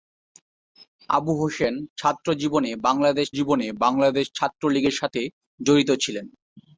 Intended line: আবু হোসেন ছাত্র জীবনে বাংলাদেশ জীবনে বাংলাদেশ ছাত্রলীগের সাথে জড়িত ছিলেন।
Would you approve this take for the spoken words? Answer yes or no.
yes